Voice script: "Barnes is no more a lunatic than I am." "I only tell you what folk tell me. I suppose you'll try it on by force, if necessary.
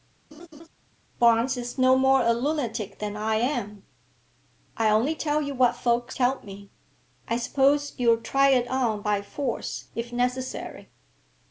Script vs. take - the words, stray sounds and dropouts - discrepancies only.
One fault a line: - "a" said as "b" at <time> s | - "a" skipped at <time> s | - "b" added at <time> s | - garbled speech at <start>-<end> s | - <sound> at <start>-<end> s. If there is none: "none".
- laugh at 0.3-0.7 s